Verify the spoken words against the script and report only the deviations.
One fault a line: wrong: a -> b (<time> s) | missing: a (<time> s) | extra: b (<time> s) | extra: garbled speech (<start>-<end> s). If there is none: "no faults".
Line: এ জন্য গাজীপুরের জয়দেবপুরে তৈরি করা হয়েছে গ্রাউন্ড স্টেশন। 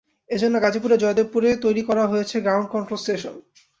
extra: কন্ট্রোল (2.7 s)